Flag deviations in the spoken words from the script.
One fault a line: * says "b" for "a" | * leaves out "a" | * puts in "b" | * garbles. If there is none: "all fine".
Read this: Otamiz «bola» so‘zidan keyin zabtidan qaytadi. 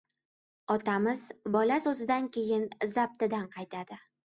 all fine